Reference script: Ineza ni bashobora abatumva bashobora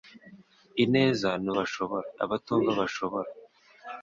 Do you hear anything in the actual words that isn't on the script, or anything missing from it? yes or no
no